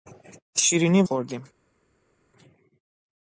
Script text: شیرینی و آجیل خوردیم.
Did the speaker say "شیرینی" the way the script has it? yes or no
yes